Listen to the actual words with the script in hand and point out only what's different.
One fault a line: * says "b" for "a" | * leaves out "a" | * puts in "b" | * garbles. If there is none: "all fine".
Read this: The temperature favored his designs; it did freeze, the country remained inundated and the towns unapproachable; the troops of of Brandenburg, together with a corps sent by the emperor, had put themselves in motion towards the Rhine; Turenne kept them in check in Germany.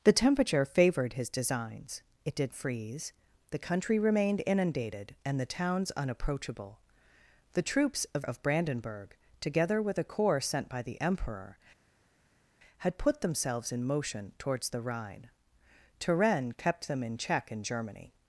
all fine